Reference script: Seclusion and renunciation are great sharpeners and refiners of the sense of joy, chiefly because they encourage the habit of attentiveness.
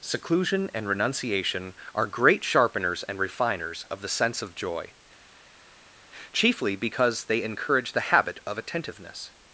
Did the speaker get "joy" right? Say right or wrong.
right